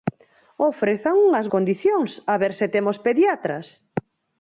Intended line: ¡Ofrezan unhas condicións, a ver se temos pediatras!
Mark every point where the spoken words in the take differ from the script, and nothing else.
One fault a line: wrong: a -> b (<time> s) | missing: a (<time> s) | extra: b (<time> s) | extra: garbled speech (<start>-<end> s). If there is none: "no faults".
no faults